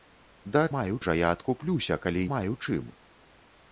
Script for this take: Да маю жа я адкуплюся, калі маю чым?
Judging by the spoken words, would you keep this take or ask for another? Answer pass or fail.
pass